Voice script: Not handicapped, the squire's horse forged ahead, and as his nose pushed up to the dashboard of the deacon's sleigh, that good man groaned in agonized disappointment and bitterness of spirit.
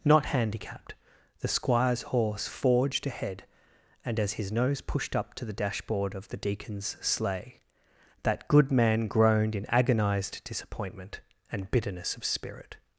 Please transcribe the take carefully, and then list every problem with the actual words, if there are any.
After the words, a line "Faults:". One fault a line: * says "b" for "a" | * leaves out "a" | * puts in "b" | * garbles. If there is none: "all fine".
Not handicapped, the squire's horse forged ahead, and as his nose pushed up to the dashboard of the deacon's sleigh, that good man groaned in agonized disappointment and bitterness of spirit.
Faults:
all fine